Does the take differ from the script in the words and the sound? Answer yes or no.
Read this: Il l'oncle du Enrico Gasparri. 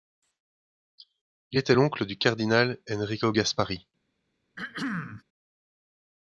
yes